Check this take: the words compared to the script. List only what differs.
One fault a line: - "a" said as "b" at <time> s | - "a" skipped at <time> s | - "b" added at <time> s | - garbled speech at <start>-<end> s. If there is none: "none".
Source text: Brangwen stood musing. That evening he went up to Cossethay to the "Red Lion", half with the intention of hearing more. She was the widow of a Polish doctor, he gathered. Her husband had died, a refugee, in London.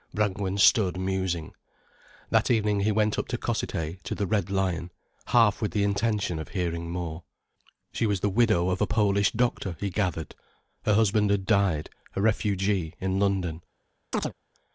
none